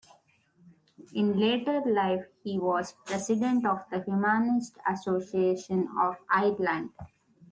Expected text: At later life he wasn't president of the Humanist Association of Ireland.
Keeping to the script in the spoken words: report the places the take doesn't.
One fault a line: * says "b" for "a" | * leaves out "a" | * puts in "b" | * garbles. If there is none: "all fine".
* says "In" for "At"
* says "was" for "wasn't"